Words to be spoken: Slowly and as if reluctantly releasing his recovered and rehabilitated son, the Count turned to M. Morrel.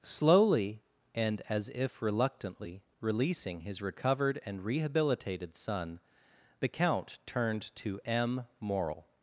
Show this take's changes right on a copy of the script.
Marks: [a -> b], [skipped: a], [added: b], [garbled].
Slowly and as if reluctantly releasing his recovered and rehabilitated son, the Count turned to M. Morrel.